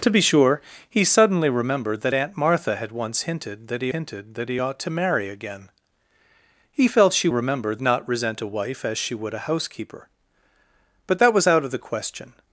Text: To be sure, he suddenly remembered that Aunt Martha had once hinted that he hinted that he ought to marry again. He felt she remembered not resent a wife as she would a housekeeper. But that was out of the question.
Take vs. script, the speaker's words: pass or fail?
pass